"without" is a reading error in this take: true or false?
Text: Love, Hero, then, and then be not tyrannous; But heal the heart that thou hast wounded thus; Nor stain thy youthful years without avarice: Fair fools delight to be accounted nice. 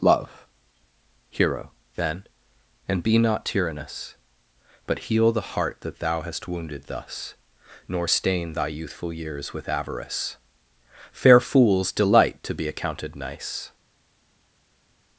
true